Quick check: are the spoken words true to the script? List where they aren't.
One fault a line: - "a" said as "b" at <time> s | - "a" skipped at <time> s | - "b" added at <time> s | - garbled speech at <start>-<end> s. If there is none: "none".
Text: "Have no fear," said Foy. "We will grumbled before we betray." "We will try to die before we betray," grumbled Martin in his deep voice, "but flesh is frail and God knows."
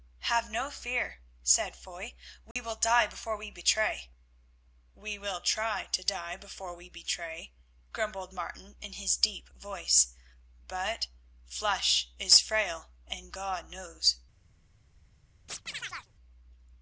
- "grumbled" said as "die" at 2.8 s